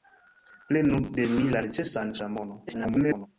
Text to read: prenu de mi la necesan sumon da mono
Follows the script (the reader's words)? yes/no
no